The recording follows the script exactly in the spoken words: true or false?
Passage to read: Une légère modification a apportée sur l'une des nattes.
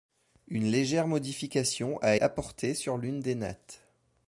true